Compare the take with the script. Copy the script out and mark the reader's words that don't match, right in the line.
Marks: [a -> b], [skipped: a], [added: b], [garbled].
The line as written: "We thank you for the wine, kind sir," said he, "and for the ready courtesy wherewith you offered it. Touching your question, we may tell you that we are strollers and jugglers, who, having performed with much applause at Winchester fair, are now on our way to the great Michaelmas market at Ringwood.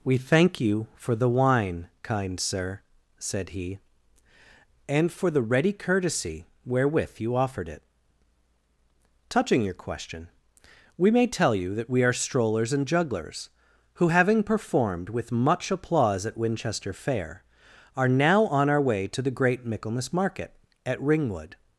"We thank you for the wine, kind sir," said he, "and for the ready courtesy wherewith you offered it. Touching your question, we may tell you that we are strollers and jugglers, who, having performed with much applause at Winchester fair, are now on our way to the great Michaelmas market at Ringwood.